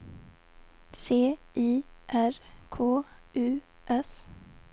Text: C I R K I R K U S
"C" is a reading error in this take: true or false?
false